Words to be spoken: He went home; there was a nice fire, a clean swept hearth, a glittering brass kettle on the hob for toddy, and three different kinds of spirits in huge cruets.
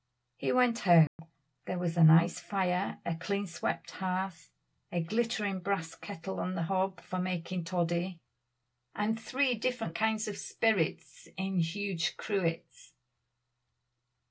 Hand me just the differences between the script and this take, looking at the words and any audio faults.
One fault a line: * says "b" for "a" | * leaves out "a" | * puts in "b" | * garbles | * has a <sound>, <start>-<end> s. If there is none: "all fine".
* has a dropout, 1.1-1.2 s
* puts in "making"